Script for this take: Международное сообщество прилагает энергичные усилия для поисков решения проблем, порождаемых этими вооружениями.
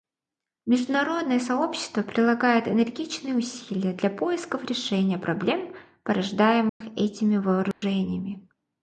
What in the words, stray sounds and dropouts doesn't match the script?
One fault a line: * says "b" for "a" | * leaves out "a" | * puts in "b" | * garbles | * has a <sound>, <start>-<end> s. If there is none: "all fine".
* has a dropout, 6.7-6.8 s
* has a dropout, 7.7-7.8 s